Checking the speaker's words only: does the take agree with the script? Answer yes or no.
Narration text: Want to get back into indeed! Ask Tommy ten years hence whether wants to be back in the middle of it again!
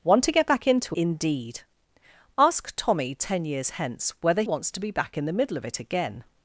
yes